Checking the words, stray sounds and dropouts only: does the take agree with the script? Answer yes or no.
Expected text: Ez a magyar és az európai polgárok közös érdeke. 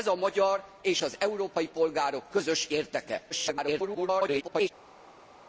no